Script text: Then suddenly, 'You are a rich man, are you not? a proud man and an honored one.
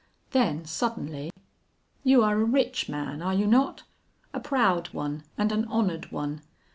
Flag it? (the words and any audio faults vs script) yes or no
yes